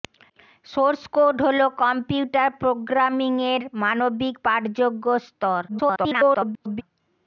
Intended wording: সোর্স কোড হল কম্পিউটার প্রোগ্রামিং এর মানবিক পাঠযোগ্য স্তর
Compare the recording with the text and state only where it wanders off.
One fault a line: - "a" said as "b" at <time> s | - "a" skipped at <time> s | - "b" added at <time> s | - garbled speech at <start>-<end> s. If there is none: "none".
- garbled speech at 5.7-6.8 s